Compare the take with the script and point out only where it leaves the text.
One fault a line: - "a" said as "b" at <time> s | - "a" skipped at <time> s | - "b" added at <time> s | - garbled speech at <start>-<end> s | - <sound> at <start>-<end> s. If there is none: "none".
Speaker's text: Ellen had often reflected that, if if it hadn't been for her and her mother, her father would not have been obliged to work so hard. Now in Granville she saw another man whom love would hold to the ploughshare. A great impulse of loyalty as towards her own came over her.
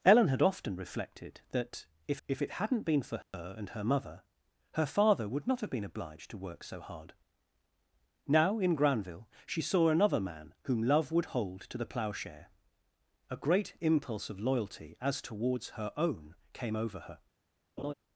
- dropout at 3.2-3.3 s
- laugh at 17.8-17.9 s